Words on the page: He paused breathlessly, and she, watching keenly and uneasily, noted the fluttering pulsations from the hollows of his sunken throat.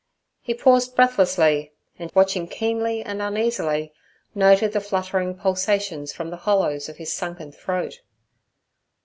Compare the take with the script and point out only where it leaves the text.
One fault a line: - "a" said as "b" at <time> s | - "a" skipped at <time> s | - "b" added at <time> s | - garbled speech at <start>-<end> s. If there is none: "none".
- "she" skipped at 2.1 s